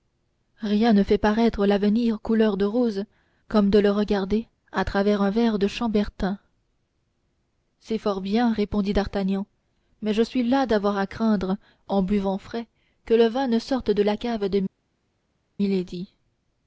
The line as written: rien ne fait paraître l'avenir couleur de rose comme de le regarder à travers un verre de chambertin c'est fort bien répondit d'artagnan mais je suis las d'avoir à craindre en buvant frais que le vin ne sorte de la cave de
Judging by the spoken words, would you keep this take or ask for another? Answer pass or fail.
pass